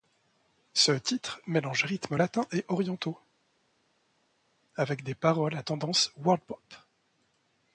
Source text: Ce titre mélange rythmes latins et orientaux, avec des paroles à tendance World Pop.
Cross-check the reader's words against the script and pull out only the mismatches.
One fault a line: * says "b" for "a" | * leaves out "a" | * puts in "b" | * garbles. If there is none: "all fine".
all fine